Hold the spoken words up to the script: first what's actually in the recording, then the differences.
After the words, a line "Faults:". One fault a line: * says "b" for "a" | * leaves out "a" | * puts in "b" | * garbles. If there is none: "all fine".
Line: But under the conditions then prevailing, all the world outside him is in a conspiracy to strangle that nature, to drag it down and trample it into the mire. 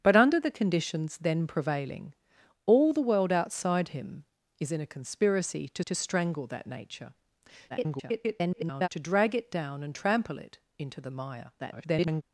But under the conditions then prevailing, all the world outside him is in a conspiracy to to strangle that nature, [garbled] to drag it down and trample it into the mire. [garbled]
Faults:
* puts in "to"
* garbles
* garbles